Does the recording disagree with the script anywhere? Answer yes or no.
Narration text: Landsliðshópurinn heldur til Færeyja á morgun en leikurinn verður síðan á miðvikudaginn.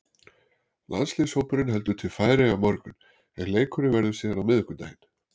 no